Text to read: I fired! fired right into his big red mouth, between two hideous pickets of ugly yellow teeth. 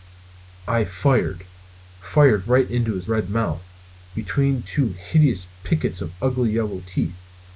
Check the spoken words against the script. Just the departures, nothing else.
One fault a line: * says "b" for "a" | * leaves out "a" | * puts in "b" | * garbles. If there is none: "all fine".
* leaves out "big"